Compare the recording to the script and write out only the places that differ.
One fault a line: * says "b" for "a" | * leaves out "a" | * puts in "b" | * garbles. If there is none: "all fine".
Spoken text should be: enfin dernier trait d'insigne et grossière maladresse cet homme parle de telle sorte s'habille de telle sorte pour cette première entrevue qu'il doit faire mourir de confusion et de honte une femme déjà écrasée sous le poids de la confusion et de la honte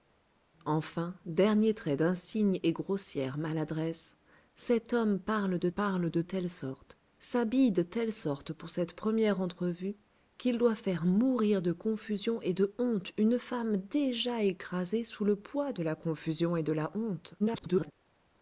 * puts in "parle de"
* garbles